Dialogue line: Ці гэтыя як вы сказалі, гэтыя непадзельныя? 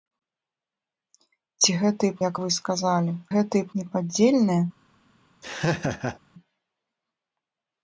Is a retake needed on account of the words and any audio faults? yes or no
yes